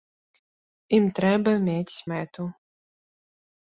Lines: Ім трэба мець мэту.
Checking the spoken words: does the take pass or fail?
pass